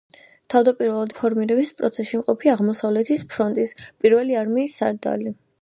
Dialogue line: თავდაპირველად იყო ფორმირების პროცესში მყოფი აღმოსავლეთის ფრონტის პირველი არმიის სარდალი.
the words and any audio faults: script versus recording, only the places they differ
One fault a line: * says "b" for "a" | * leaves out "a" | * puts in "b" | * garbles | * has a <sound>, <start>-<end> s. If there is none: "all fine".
* leaves out "იყო"